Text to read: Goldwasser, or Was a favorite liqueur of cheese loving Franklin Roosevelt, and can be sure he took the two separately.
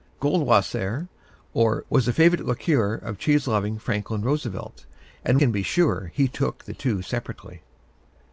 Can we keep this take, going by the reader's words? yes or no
yes